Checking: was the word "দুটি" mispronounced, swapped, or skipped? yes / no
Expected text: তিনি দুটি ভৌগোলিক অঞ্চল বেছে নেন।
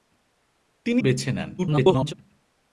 yes